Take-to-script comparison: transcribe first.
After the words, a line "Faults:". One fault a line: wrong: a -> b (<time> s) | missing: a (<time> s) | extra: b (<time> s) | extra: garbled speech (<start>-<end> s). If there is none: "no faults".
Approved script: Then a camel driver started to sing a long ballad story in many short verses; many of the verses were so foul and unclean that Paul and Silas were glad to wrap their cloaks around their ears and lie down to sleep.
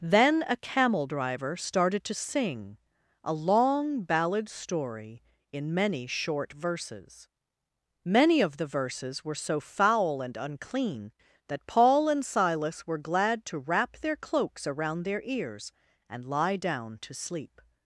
Then a camel driver started to sing a long ballad story in many short verses; many of the verses were so foul and unclean that Paul and Silas were glad to wrap their cloaks around their ears and lie down to sleep.
Faults:
no faults